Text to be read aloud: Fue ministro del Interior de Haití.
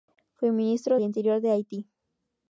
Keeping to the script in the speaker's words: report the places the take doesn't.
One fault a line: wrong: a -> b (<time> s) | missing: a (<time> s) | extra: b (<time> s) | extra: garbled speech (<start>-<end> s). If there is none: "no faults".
missing: del (1.0 s)